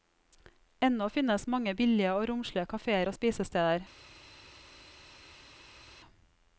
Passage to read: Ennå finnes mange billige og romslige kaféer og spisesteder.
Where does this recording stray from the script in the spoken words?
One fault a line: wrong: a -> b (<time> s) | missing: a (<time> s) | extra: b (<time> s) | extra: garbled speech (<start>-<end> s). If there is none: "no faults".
no faults